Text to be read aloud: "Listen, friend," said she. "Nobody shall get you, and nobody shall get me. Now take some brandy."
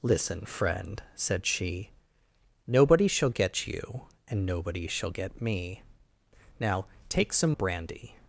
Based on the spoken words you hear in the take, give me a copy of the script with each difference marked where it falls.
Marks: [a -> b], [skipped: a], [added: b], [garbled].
"Listen, friend," said she. "Nobody shall get you, and nobody shall get me. Now take some brandy."